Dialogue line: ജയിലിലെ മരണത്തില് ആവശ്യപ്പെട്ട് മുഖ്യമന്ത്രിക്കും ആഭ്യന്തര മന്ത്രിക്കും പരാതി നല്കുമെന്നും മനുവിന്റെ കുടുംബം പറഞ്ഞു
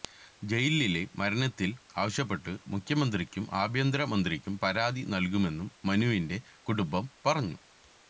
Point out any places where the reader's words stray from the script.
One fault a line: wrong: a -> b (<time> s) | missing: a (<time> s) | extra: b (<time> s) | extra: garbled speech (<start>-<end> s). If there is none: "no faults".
no faults